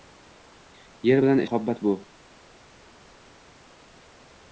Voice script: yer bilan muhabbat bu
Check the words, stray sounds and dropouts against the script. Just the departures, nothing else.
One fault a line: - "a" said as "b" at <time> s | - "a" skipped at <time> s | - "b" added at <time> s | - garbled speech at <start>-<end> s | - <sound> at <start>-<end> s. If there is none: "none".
none